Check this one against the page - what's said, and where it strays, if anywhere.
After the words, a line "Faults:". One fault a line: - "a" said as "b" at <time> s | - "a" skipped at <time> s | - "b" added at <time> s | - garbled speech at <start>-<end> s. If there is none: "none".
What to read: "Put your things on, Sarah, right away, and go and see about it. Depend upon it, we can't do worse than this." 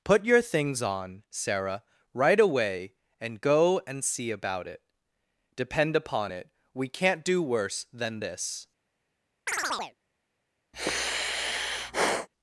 "Put your things on, Sarah, right away, and go and see about it. Depend upon it, we can't do worse than this."
Faults:
none